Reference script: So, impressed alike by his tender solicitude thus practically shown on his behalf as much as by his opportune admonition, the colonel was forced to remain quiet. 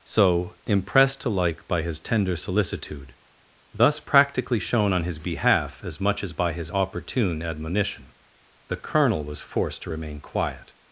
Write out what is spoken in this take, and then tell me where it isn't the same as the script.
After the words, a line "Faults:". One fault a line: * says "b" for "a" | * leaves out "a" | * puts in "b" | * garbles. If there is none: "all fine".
So, impressed alike by his tender solicitude thus practically shown on his behalf as much as by his opportune admonition, the colonel was forced to remain quiet.
Faults:
all fine